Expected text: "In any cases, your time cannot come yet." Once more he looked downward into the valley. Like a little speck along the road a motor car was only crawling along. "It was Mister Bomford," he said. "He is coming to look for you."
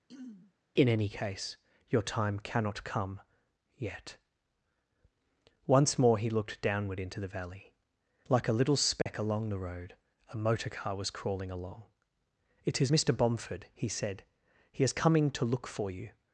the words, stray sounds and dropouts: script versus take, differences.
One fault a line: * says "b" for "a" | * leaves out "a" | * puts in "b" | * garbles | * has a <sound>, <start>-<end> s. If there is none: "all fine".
* has a throat clearing, 0.1-0.5 s
* says "case" for "cases"
* has a dropout, 9.0-9.1 s
* leaves out "only"
* says "is" for "was"